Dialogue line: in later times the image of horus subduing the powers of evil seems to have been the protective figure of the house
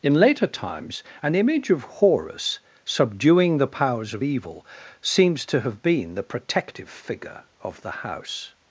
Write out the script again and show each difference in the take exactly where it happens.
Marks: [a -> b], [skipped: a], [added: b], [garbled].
in later times [the -> an] image of horus subduing the powers of evil seems to have been the protective figure of the house